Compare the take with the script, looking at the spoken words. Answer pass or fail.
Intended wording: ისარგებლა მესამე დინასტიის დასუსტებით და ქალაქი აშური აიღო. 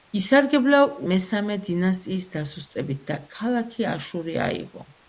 pass